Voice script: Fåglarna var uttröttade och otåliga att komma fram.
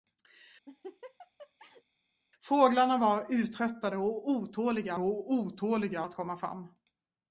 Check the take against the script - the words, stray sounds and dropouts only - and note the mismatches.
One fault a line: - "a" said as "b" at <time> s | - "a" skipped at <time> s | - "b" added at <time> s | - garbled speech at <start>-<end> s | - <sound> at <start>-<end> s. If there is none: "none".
- laugh at 0.7-1.8 s
- "och otåliga" added at 5.0 s